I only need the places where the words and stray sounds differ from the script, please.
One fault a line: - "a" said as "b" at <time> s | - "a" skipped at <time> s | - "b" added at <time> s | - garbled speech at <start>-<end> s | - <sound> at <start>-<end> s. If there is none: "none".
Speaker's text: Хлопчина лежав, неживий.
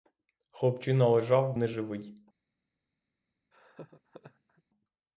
- laugh at 3.5-4.6 s